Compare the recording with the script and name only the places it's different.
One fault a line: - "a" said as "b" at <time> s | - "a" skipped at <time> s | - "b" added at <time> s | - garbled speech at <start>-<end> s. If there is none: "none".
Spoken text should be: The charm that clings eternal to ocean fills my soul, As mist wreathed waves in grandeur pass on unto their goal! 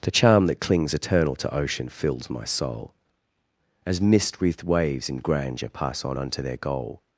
none